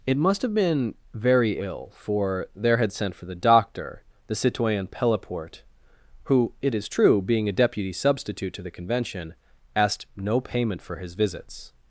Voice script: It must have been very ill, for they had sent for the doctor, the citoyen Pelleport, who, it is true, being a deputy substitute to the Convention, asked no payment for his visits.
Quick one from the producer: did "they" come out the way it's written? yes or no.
no